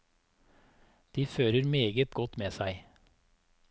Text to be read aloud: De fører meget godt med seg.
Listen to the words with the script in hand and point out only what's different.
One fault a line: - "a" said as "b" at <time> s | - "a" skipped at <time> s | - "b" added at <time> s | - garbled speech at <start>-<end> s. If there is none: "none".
none